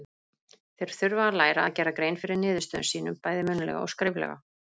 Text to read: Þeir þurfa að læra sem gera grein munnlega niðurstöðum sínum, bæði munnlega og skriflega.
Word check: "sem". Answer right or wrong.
wrong